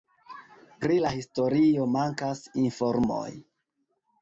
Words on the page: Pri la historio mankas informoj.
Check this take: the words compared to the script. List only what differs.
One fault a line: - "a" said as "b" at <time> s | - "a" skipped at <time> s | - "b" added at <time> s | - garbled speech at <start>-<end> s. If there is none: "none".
none